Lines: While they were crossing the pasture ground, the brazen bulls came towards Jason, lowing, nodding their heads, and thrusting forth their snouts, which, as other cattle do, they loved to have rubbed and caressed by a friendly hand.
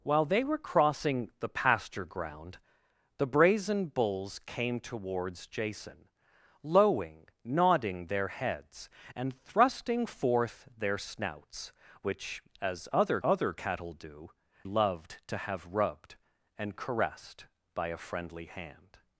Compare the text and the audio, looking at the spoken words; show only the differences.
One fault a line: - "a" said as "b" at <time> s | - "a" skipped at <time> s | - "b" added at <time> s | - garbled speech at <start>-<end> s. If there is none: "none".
- "other" added at 13.2 s
- "they" skipped at 14.3 s